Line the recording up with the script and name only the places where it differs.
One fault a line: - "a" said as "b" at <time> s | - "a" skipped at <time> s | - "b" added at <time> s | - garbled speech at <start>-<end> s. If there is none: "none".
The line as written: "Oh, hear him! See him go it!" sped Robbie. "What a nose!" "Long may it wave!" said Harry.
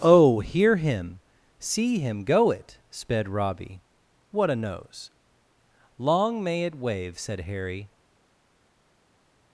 none